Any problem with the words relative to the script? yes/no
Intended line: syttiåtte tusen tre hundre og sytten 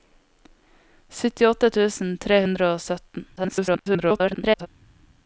yes